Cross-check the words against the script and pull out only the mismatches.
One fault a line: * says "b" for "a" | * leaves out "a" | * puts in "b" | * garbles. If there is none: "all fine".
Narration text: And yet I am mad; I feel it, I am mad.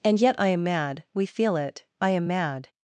* says "we" for "I"